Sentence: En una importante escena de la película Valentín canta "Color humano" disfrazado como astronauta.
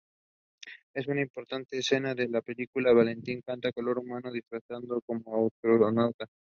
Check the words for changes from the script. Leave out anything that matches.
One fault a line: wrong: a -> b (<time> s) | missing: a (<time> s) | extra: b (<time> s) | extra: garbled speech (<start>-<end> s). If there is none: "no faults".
no faults